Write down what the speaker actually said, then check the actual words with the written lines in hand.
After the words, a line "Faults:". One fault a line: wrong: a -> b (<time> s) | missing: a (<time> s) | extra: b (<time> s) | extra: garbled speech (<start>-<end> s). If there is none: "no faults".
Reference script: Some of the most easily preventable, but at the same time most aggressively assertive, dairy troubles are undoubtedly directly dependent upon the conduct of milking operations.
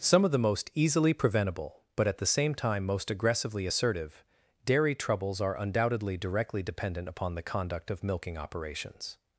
Some of the most easily preventable, but at the same time most aggressively assertive, dairy troubles are undoubtedly directly dependent upon the conduct of milking operations.
Faults:
no faults